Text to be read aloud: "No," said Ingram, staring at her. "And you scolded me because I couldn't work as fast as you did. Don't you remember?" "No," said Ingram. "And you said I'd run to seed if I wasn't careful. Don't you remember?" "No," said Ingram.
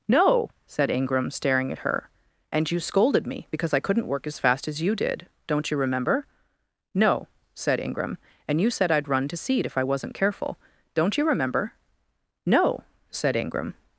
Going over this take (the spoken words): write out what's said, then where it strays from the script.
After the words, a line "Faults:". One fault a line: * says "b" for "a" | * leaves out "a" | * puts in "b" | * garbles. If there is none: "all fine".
"No," said Ingram, staring at her. "And you scolded me because I couldn't work as fast as you did. Don't you remember?" "No," said Ingram. "And you said I'd run to seed if I wasn't careful. Don't you remember?" "No," said Ingram.
Faults:
all fine